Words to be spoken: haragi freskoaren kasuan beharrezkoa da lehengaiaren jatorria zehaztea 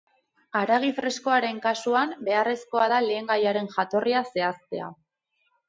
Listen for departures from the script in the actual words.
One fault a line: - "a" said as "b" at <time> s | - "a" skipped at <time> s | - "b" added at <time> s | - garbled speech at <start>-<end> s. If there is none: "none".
none